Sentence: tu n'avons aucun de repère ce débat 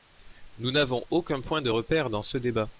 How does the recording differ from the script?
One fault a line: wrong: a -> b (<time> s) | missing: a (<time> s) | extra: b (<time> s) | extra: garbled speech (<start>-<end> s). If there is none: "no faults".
wrong: tu -> nous (0.6 s)
extra: point (1.4 s)
extra: dans (2.1 s)